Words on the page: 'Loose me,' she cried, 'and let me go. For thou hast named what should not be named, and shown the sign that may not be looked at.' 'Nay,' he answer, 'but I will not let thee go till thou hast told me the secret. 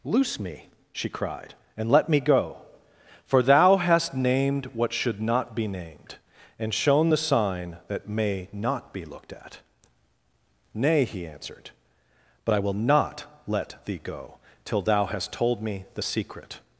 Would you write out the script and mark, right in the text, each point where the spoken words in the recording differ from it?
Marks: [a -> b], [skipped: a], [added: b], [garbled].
'Loose me,' she cried, 'and let me go. For thou hast named what should not be named, and shown the sign that may not be looked at.' 'Nay,' he [answer, -> answered] 'but I will not let thee go till thou hast told me the secret.